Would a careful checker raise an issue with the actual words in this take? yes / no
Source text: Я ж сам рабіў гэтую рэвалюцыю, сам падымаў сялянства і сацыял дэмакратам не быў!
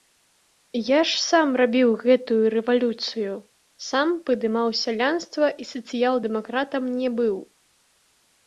no